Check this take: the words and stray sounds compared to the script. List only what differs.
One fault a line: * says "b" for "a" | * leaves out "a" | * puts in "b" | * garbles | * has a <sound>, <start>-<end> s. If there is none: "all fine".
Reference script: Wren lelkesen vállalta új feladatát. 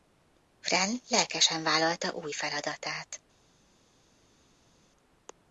all fine